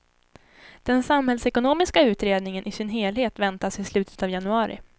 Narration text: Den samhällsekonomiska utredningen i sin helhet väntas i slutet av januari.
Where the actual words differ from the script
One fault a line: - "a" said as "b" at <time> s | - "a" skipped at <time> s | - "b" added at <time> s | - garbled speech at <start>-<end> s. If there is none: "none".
none